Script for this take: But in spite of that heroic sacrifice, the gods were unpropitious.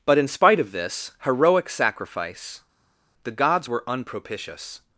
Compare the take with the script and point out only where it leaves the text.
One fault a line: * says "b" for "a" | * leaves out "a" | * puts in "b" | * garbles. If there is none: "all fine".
* says "this" for "that"